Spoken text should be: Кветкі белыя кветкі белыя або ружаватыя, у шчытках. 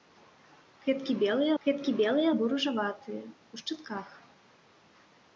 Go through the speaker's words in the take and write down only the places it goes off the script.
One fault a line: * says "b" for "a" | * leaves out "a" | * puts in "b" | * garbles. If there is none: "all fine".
all fine